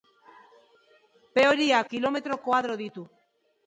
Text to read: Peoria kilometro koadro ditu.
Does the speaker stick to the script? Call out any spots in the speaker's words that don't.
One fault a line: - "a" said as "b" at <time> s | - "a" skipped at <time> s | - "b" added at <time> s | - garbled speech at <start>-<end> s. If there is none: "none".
none